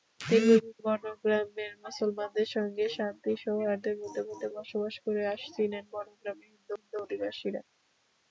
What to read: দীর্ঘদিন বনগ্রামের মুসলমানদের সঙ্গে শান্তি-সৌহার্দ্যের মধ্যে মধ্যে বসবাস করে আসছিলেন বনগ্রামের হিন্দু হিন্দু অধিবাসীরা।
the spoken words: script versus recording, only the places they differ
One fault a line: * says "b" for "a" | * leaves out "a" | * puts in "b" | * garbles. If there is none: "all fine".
all fine